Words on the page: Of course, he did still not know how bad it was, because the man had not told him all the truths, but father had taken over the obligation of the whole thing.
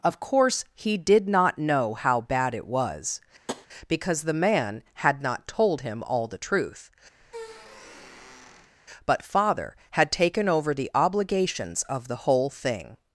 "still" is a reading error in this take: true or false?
true